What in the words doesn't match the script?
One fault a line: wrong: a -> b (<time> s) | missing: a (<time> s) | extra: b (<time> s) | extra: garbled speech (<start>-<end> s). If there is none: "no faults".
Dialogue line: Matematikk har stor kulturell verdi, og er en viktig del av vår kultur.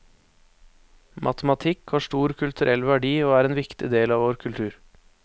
no faults